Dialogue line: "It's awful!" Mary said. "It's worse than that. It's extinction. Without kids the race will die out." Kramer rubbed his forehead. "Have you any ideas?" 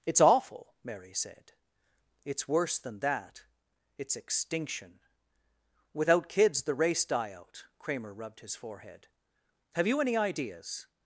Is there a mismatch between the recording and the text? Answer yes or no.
yes